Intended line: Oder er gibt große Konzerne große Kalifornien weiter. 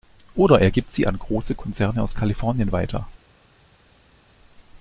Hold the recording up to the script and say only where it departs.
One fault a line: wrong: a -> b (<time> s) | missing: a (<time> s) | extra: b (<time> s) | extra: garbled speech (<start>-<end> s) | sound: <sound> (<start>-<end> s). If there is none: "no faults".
extra: sie an (0.9 s)
wrong: große -> aus (2.0 s)